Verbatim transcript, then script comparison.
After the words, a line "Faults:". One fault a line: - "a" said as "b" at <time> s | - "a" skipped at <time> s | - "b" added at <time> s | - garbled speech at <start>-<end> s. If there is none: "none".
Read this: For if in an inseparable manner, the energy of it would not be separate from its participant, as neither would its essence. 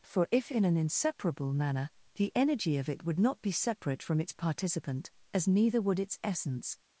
For if in an inseparable manner, the energy of it would not be separate from its participant, as neither would its essence.
Faults:
none